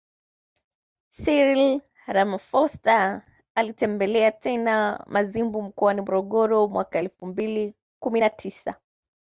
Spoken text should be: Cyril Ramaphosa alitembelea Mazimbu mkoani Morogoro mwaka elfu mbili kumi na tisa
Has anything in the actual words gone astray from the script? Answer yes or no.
yes